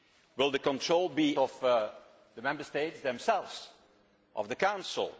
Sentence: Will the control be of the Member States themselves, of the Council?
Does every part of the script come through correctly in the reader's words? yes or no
yes